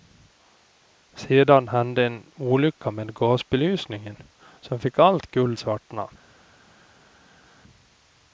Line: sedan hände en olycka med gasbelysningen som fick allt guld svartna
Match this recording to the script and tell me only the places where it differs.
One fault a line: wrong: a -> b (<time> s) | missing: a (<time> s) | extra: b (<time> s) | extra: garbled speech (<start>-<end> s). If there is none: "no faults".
no faults